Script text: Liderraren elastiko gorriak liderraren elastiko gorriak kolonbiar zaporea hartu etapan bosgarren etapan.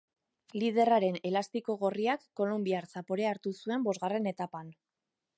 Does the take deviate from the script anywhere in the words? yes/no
yes